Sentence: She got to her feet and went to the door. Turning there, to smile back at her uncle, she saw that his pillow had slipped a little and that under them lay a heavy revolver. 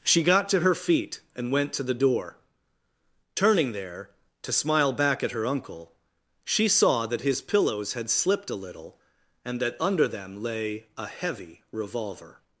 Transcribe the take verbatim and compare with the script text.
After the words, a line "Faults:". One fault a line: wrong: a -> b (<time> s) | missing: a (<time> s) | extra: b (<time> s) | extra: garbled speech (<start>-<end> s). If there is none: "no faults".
She got to her feet and went to the door. Turning there, to smile back at her uncle, she saw that his pillows had slipped a little and that under them lay a heavy revolver.
Faults:
wrong: pillow -> pillows (7.4 s)